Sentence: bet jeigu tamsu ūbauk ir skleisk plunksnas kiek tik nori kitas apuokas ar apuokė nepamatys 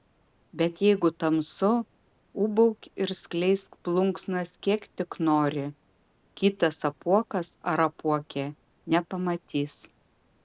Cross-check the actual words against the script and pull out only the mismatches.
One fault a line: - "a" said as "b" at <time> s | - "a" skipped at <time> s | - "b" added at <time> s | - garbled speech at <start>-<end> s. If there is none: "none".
none